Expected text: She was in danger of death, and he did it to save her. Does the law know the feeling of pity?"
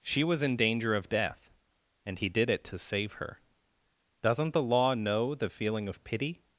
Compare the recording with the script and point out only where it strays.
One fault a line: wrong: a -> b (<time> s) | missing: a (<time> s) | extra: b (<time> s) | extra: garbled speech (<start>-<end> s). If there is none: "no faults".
wrong: Does -> Doesn't (4.2 s)